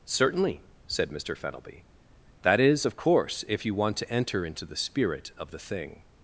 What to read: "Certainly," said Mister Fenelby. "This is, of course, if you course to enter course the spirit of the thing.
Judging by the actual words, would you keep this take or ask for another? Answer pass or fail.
fail